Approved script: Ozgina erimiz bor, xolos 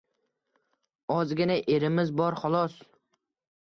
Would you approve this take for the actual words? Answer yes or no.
yes